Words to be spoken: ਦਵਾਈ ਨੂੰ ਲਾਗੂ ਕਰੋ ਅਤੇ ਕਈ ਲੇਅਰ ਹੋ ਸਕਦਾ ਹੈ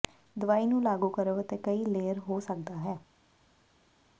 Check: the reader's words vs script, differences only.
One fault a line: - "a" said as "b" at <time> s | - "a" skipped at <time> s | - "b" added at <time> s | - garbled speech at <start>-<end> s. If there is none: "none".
none